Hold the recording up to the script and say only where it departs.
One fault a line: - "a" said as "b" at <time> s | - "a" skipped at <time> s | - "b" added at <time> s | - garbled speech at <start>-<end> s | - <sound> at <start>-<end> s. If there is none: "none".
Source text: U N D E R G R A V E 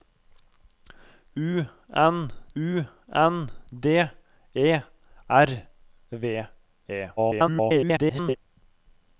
- "u N" added at 2.5 s
- "G R A" skipped at 5.7 s
- garbled speech at 7.2-8.4 s